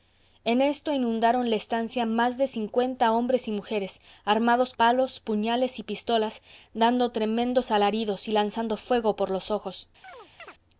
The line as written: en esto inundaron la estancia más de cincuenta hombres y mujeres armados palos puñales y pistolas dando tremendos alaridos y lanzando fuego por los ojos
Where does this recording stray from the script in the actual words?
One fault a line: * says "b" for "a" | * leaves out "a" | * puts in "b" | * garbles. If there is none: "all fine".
all fine